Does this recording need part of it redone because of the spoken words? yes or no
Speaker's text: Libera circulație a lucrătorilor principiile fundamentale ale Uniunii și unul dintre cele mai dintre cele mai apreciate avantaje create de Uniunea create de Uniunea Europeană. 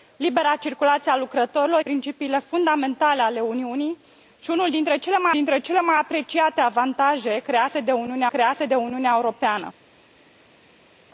no